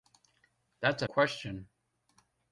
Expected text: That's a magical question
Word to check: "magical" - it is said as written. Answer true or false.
false